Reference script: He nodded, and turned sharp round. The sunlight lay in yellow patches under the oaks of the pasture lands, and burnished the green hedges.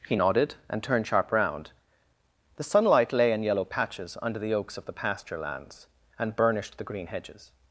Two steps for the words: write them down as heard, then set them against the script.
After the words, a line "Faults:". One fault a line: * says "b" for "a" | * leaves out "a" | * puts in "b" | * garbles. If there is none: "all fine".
He nodded, and turned sharp round. The sunlight lay in yellow patches under the oaks of the pasture lands, and burnished the green hedges.
Faults:
all fine